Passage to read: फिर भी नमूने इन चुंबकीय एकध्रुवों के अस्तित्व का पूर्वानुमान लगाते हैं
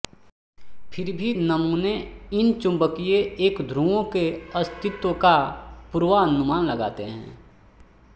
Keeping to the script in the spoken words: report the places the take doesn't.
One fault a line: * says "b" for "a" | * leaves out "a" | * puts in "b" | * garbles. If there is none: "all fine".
all fine